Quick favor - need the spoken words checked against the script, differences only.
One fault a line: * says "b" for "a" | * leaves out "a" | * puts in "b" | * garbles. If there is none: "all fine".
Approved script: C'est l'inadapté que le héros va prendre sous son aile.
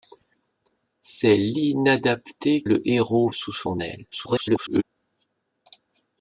* leaves out "que"
* leaves out "va prendre"
* garbles